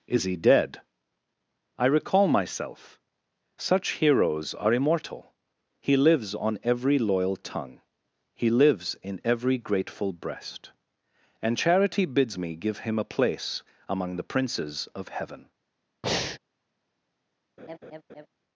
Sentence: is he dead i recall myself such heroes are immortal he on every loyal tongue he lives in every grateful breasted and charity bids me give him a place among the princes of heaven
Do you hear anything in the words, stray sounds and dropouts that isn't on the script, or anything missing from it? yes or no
yes